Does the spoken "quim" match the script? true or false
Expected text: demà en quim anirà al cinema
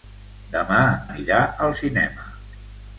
false